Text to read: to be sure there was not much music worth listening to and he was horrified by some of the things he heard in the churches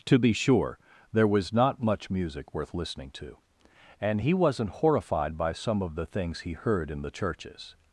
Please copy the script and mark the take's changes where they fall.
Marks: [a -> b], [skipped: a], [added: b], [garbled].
to be sure there was not much music worth listening to and he [was -> wasn't] horrified by some of the things he heard in the churches